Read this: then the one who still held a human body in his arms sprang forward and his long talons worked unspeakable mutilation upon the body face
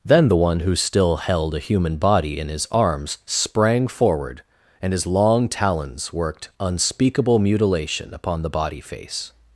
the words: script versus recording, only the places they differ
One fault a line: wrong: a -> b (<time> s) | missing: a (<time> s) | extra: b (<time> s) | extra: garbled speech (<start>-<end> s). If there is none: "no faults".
no faults